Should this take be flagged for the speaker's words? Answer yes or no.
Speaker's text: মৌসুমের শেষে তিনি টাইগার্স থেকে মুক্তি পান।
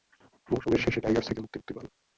yes